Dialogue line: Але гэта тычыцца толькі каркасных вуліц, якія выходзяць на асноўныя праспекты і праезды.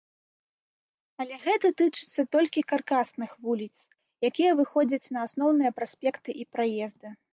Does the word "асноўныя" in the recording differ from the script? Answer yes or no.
no